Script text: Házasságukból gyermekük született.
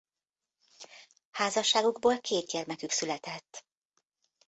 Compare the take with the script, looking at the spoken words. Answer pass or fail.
fail